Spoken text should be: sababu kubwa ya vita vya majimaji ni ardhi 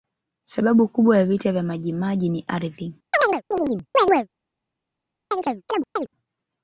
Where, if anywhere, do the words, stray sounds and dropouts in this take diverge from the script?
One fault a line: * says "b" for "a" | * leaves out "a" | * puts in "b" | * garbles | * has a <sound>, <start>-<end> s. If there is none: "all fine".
* has a chirp, 3.1-4.3 s
* has a chirp, 5.3-6.1 s